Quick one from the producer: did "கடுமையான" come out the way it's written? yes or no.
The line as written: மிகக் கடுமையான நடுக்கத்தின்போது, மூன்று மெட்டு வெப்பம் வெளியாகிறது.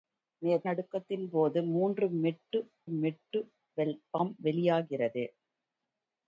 no